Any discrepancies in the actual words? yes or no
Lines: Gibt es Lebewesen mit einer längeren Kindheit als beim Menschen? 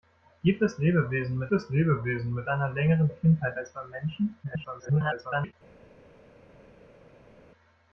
yes